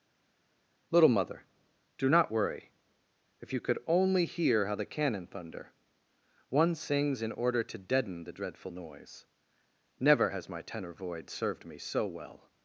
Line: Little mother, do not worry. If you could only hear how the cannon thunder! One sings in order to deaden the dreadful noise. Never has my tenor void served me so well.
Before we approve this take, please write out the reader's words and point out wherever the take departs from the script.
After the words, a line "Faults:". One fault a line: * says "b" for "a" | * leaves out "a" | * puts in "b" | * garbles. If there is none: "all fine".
Little mother, do not worry. If you could only hear how the cannon thunder! One sings in order to deaden the dreadful noise. Never has my tenor void served me so well.
Faults:
all fine